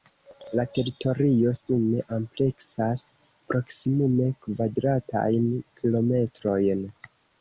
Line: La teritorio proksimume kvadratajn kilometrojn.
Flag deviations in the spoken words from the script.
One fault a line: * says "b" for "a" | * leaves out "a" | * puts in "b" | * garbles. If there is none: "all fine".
* puts in "sume ampleksas"